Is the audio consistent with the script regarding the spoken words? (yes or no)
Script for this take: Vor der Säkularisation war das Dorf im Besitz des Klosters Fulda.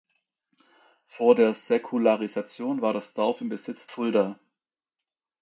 no